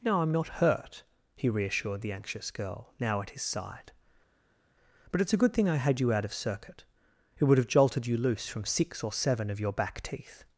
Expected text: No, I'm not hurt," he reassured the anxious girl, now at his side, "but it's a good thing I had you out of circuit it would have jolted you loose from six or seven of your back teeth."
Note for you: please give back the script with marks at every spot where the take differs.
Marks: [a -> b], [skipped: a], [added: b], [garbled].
No, I'm not hurt," he reassured the anxious girl, now at his side, "but it's a good thing I had you out of circuit it would have jolted you loose from six or seven of your back teeth."